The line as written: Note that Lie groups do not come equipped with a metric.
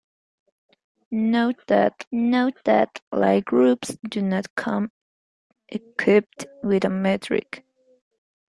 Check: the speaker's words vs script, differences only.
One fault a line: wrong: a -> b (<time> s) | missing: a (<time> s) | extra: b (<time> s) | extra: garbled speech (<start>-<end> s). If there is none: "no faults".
extra: note that (2.1 s)